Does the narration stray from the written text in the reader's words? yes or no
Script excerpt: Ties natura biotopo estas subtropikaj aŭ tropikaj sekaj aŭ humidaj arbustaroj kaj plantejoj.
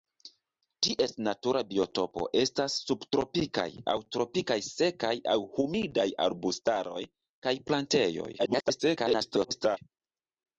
yes